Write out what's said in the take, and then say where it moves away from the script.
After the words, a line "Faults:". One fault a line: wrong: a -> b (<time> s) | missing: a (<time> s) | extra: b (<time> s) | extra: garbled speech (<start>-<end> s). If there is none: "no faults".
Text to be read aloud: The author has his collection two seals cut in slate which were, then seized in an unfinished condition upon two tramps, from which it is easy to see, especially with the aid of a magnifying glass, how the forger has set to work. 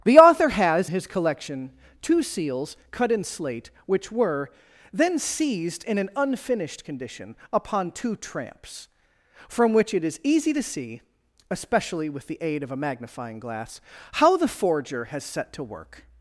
The author has his collection two seals cut in slate which were, then seized in an unfinished condition upon two tramps, from which it is easy to see, especially with the aid of a magnifying glass, how the forger has set to work.
Faults:
no faults